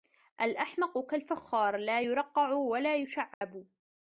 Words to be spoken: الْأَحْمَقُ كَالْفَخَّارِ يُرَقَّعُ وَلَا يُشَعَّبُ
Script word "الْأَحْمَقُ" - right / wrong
right